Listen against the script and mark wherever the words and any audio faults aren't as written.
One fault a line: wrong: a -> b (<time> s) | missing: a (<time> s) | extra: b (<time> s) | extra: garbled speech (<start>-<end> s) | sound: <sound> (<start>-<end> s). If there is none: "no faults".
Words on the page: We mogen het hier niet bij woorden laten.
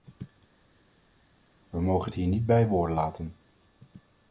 no faults